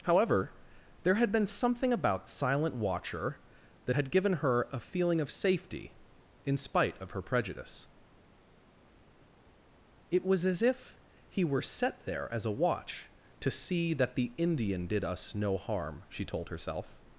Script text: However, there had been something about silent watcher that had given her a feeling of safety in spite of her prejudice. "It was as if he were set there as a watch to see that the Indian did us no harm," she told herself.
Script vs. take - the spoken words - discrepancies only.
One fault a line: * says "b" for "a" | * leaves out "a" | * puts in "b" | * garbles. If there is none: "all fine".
all fine